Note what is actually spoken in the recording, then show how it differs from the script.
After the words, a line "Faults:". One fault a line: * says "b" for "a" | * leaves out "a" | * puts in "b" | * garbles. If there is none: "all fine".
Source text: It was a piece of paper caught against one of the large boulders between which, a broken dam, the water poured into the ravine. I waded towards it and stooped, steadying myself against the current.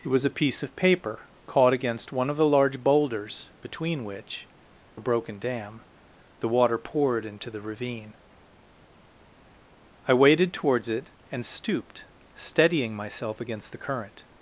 It was a piece of paper caught against one of the large boulders between which, a broken dam, the water poured into the ravine. I waded towards it and stooped, steadying myself against the current.
Faults:
all fine